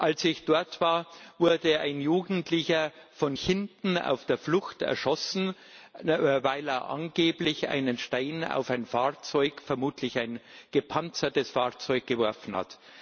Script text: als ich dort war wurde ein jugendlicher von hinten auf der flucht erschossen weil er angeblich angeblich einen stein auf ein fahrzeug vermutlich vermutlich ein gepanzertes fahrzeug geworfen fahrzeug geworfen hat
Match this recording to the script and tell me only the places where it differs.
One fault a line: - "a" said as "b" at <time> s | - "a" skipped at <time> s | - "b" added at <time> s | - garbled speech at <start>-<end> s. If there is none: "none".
- "angeblich" skipped at 7.7 s
- "vermutlich" skipped at 10.2 s
- "fahrzeug geworfen" skipped at 12.6 s